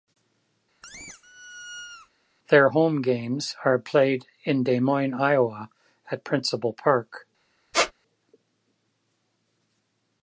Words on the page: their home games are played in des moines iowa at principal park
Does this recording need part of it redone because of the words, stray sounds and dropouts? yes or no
yes